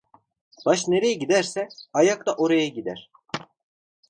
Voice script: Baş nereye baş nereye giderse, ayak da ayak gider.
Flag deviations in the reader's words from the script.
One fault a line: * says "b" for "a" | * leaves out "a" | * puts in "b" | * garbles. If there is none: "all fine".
* leaves out "baş nereye"
* says "oraya" for "ayak"